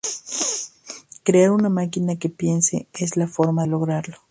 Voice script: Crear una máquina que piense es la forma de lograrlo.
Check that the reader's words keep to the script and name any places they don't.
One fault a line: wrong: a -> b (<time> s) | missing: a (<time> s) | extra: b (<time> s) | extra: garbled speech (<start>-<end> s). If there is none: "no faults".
missing: de (3.6 s)